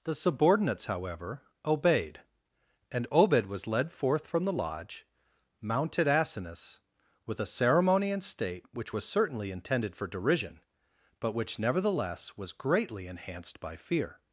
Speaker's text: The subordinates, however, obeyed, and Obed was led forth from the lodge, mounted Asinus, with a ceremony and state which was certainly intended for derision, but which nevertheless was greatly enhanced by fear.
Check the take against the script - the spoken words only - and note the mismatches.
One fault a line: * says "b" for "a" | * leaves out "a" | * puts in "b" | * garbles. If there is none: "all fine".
all fine